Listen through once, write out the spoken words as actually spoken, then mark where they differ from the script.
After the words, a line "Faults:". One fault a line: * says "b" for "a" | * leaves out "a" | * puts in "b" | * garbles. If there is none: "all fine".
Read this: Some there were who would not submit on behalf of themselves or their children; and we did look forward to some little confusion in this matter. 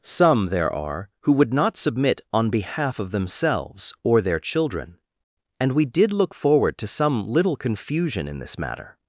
Some there are who would not submit on behalf of themselves or their children; and we did look forward to some little confusion in this matter.
Faults:
* says "are" for "were"